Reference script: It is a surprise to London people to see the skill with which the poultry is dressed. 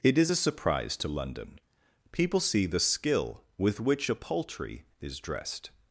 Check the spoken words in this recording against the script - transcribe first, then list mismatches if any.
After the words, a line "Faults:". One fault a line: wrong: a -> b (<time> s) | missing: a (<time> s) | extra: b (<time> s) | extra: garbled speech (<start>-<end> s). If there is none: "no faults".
It is a surprise to London people see the skill with which a poultry is dressed.
Faults:
missing: to (2.4 s)
wrong: the -> a (4.1 s)